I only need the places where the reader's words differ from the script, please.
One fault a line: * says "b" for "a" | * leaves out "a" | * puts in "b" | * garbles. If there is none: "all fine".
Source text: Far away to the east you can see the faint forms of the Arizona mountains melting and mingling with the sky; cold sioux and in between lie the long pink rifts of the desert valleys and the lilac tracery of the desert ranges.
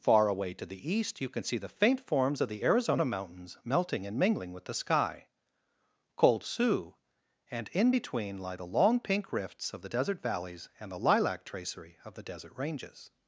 all fine